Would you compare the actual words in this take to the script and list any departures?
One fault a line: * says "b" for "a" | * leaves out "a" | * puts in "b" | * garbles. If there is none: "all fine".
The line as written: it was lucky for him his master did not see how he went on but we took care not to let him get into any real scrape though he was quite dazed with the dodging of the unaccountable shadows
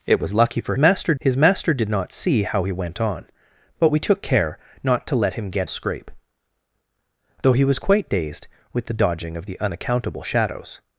* says "master" for "him"
* leaves out "into any real"